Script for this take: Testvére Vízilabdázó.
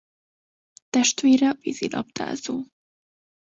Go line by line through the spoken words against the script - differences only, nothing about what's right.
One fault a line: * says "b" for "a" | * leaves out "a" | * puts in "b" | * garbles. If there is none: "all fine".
all fine